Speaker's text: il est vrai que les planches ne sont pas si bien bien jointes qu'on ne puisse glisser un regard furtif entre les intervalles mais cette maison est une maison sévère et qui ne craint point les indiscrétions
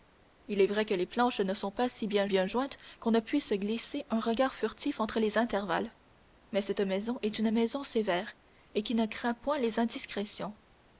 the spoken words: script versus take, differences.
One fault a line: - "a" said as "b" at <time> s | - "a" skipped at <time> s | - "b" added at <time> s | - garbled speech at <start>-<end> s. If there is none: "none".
none